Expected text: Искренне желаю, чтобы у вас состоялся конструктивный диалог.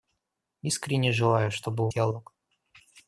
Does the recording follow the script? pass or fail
fail